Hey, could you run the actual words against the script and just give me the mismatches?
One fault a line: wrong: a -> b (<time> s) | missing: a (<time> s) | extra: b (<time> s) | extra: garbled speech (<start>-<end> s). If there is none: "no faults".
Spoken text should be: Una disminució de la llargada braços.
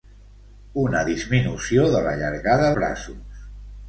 no faults